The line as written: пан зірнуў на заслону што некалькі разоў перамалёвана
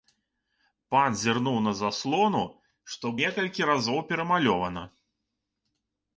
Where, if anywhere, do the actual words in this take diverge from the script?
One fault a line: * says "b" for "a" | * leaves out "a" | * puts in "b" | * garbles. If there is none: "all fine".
all fine